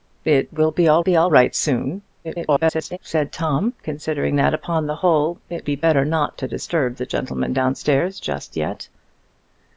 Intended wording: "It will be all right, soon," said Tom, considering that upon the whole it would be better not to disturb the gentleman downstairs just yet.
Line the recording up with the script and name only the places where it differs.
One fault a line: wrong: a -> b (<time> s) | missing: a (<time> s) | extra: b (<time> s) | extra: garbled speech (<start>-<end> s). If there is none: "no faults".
extra: be all (1.0 s)
extra: garbled speech (2.2-3.0 s)
missing: would (5.7 s)